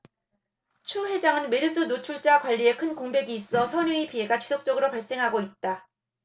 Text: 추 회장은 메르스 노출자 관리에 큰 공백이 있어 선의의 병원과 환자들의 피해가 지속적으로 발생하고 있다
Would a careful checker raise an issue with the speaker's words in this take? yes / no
yes